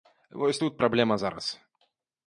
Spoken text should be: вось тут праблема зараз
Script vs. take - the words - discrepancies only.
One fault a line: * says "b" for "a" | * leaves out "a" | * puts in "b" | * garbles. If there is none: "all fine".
all fine